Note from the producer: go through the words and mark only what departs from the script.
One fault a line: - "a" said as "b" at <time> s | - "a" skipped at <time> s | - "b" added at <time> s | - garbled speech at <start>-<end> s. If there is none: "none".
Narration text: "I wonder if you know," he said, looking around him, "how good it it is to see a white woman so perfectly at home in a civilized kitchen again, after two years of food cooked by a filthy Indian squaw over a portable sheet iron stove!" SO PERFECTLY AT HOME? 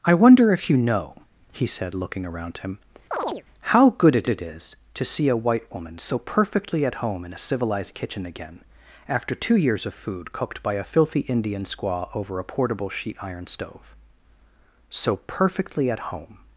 none